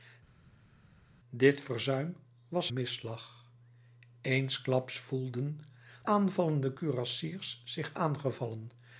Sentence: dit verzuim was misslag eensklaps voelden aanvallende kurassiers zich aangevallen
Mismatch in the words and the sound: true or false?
false